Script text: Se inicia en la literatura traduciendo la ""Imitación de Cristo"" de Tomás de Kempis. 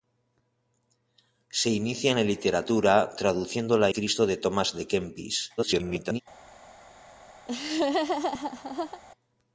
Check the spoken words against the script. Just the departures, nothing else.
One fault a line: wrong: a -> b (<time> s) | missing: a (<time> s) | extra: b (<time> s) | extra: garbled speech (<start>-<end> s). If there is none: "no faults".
missing: Imitación de (3.9 s)
extra: garbled speech (5.6-6.2 s)